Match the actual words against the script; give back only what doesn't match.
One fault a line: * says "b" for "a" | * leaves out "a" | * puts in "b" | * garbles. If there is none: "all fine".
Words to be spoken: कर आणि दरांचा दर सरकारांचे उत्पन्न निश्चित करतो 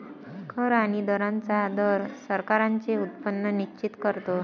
all fine